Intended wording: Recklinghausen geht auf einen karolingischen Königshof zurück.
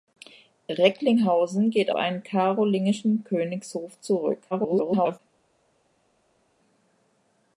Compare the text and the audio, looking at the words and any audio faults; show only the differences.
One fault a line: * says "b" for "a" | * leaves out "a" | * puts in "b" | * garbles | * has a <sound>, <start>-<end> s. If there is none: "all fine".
* leaves out "auf"
* garbles